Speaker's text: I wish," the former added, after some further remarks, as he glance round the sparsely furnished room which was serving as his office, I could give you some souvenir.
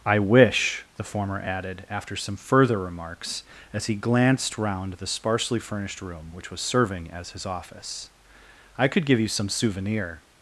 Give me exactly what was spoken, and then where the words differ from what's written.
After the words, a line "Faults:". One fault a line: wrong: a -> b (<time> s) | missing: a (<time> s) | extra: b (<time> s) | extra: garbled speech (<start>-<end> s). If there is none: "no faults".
I wish," the former added, after some further remarks, as he glanced round the sparsely furnished room which was serving as his office, I could give you some souvenir.
Faults:
wrong: glance -> glanced (3.9 s)